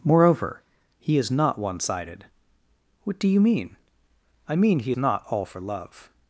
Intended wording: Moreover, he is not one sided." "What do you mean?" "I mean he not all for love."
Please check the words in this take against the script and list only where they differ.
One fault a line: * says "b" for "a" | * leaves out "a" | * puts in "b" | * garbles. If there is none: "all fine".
all fine